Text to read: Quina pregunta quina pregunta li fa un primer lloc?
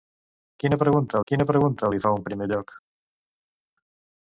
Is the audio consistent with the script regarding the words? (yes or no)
yes